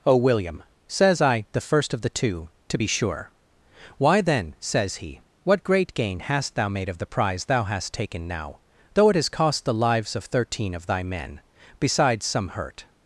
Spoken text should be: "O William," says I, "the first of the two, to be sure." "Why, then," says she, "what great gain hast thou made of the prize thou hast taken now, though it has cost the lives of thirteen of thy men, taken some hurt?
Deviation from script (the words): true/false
true